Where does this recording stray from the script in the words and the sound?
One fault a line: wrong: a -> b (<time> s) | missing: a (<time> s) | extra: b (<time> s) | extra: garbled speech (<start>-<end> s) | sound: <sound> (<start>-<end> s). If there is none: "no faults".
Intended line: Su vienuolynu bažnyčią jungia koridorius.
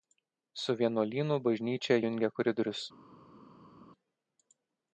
no faults